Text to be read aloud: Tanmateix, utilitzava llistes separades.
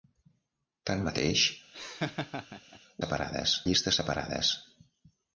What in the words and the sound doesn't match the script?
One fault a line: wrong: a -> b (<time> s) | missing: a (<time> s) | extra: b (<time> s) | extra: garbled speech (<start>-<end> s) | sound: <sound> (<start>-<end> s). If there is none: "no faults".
sound: laugh (1.7-2.8 s)
wrong: utilitzava -> separades (3.0 s)